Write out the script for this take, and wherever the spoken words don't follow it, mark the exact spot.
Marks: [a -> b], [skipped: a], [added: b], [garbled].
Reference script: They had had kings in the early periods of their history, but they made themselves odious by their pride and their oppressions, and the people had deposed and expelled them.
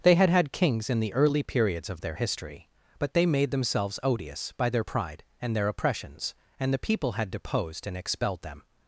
They had had kings in the early periods of their history, but they made themselves odious by their pride and their oppressions, and the people had deposed and expelled them.